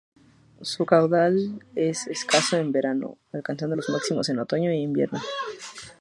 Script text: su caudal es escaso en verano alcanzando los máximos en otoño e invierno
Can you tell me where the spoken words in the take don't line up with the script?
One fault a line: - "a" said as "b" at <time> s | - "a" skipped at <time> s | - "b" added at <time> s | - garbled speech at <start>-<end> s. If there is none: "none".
none